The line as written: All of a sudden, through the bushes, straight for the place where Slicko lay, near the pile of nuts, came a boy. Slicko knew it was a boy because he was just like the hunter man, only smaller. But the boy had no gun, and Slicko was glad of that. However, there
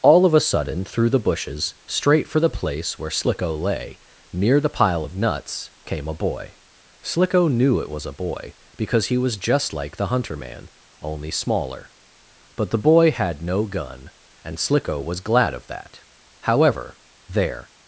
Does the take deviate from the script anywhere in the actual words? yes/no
no